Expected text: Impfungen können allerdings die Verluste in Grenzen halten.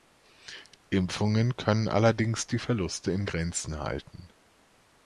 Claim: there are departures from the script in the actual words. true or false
false